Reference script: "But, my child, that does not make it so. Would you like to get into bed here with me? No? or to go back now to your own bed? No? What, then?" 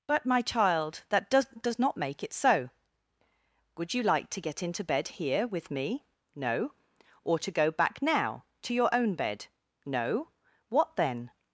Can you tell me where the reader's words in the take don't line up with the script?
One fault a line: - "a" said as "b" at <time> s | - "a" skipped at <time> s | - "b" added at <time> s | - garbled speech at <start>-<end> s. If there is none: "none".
- "does" added at 1.6 s